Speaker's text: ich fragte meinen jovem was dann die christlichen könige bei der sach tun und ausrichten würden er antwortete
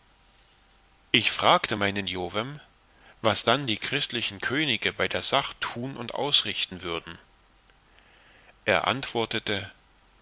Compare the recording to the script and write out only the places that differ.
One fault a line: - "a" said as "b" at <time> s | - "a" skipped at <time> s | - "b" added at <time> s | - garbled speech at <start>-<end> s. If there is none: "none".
none